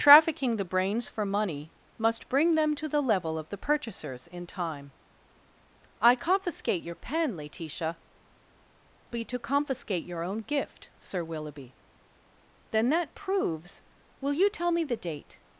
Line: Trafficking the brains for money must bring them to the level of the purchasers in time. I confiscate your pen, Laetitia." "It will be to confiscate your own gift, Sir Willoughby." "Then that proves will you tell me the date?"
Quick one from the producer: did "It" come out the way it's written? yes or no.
no